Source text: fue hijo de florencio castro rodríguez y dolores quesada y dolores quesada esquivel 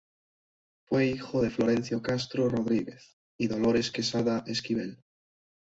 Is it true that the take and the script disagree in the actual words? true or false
true